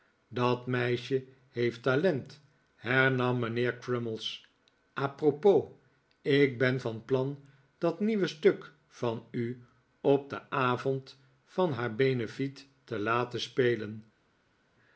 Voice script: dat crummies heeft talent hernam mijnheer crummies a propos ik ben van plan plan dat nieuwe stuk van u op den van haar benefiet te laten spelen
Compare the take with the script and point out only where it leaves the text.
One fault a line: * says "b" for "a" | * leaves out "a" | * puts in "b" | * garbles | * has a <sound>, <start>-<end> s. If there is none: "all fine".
* says "meisje" for "crummies"
* leaves out "plan"
* puts in "avond"